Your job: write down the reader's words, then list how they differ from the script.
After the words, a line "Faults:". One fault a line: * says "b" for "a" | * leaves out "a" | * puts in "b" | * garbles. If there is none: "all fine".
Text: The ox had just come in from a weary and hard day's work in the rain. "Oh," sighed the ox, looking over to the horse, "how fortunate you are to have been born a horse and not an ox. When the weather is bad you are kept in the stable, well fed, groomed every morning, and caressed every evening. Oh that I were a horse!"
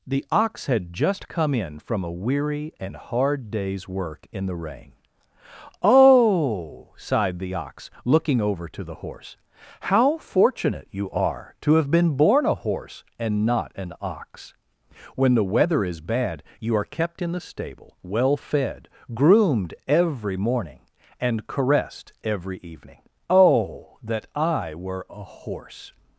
The ox had just come in from a weary and hard day's work in the rain. "Oh," sighed the ox, looking over to the horse, "how fortunate you are to have been born a horse and not an ox. When the weather is bad you are kept in the stable, well fed, groomed every morning, and caressed every evening. Oh that I were a horse!"
Faults:
all fine